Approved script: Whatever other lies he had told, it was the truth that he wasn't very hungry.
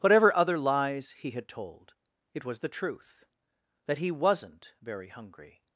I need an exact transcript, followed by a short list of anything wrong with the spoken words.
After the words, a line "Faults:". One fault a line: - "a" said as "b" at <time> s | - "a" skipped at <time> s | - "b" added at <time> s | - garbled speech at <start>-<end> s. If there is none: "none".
Whatever other lies he had told, it was the truth that he wasn't very hungry.
Faults:
none